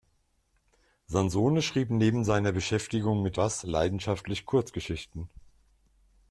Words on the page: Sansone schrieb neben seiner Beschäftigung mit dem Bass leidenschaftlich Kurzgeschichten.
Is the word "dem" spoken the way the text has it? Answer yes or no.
no